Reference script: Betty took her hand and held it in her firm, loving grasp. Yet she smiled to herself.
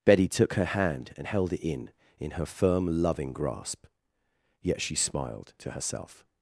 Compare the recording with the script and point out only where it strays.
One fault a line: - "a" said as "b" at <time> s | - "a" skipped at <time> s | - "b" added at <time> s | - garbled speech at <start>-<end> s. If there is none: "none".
- "in" added at 2.2 s